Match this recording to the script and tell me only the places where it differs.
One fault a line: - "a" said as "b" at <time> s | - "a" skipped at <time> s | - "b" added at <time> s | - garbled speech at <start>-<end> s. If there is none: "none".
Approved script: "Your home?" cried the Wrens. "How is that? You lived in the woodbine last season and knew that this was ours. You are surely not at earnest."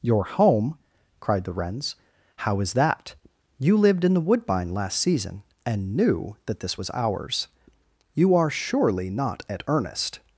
none